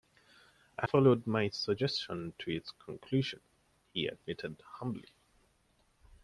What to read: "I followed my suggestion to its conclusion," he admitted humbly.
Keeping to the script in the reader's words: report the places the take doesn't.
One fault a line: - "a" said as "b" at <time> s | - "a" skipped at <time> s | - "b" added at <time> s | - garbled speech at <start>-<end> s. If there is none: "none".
none